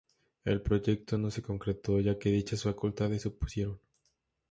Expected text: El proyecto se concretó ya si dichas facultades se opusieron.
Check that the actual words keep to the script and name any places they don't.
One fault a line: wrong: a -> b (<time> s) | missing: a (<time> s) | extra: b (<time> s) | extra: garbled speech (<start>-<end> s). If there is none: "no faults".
extra: no (1.2 s)
wrong: si -> que (2.2 s)